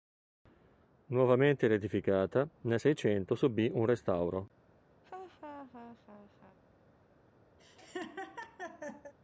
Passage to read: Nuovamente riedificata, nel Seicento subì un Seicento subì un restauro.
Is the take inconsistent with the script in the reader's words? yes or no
yes